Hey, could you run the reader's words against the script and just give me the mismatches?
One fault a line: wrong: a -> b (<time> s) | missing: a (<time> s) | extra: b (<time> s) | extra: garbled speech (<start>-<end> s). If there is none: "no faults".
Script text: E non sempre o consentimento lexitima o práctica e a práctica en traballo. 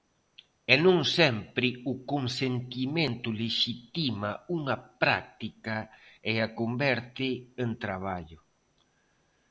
wrong: o -> unha (4.6 s)
wrong: práctica -> converte (6.6 s)